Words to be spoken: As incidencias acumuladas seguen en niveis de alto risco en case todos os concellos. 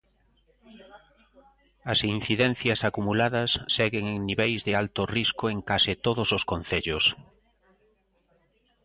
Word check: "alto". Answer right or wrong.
right